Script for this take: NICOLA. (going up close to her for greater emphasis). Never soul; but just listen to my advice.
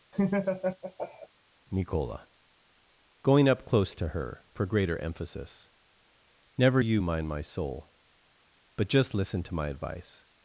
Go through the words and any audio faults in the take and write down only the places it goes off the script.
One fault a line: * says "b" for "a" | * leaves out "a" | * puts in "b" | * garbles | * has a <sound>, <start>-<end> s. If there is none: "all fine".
* has a laugh, 0.1-1.3 s
* puts in "you mind my"